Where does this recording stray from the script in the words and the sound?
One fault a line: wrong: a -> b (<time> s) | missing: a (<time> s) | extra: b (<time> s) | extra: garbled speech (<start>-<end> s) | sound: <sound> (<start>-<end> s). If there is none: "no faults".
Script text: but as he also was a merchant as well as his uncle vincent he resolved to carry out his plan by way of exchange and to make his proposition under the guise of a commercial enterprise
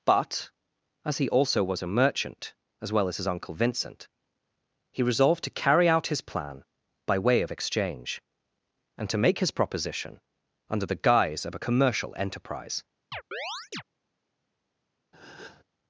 sound: chirp (13.1-13.8 s)
sound: breath (15.1-15.6 s)